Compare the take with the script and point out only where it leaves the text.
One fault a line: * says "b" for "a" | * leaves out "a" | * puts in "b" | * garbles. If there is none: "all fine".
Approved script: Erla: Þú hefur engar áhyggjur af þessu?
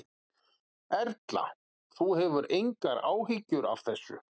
all fine